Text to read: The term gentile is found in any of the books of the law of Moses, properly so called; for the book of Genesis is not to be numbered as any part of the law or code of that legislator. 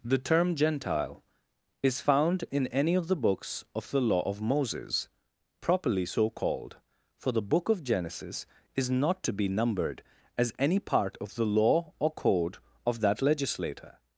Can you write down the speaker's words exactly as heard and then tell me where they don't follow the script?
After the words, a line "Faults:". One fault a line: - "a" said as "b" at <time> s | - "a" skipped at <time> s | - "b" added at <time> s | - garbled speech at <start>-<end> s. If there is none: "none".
The term gentile is found in any of the books of the law of Moses, properly so called; for the book of Genesis is not to be numbered as any part of the law or code of that legislator.
Faults:
none